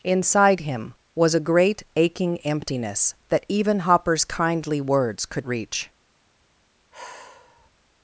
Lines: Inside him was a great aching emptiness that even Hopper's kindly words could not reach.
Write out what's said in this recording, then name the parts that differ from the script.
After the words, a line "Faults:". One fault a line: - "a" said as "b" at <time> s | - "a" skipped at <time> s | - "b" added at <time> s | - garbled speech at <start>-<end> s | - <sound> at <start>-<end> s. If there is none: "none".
Inside him was a great aching emptiness that even Hopper's kindly words could reach.
Faults:
- "not" skipped at 5.5 s
- sigh at 6.9-7.7 s